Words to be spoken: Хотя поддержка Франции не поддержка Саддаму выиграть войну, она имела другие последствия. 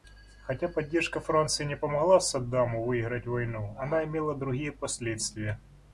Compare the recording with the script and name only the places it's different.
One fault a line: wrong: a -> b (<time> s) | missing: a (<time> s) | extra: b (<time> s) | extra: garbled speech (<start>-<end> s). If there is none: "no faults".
wrong: поддержка -> помогла (1.8 s)